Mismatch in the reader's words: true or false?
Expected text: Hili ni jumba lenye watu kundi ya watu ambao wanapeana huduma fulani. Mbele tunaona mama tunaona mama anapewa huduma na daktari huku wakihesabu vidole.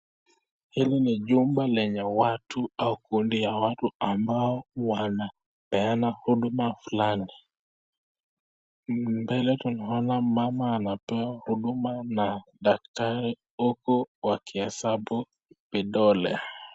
true